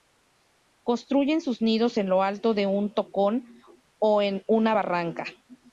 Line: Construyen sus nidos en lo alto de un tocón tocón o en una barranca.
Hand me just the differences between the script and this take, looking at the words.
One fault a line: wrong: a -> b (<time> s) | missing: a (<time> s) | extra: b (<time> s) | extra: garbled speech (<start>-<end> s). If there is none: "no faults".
missing: tocón (3.4 s)